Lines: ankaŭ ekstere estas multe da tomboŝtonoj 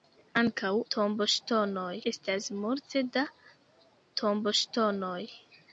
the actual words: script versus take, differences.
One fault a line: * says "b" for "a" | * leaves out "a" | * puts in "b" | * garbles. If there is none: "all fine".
* says "tomboŝtonoj" for "ekstere"